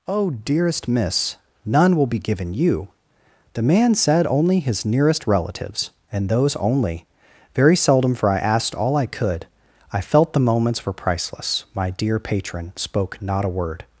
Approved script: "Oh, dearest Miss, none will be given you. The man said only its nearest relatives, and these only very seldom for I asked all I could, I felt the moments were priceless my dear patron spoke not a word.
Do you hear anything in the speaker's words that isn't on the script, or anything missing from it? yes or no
yes